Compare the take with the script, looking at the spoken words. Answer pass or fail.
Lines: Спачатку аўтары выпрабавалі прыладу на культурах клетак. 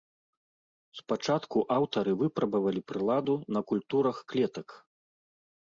pass